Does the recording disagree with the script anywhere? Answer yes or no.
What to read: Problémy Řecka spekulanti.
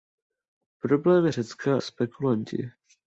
no